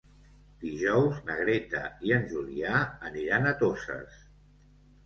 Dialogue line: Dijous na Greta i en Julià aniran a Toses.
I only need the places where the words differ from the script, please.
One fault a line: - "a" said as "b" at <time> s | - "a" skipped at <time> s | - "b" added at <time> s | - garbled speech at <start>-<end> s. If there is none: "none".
none